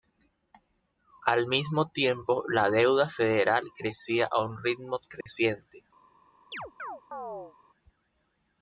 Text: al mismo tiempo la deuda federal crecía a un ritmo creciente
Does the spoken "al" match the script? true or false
true